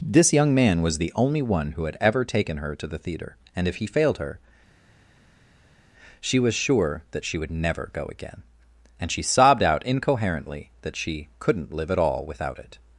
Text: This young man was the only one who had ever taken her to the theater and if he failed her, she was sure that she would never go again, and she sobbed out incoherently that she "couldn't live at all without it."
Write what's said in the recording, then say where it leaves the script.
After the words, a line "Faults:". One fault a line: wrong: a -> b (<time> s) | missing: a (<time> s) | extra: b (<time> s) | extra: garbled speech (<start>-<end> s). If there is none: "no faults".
This young man was the only one who had ever taken her to the theater and if he failed her, she was sure that she would never go again, and she sobbed out incoherently that she "couldn't live at all without it."
Faults:
no faults